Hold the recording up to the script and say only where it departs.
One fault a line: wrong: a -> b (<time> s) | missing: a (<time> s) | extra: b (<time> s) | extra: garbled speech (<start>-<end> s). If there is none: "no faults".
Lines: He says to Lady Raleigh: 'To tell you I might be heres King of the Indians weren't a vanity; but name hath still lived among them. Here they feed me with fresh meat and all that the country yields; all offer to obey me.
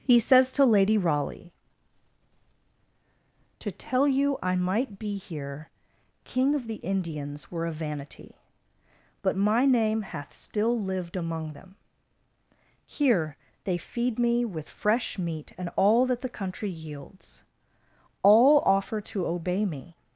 wrong: heres -> here (5.2 s)
wrong: weren't -> were (7.5 s)
extra: my (9.4 s)